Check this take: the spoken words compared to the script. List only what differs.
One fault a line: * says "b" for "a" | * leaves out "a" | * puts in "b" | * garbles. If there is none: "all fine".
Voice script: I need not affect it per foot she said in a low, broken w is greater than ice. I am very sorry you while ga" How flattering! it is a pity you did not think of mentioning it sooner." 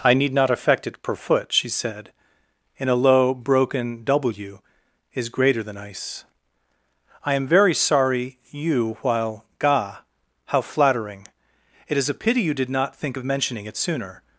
all fine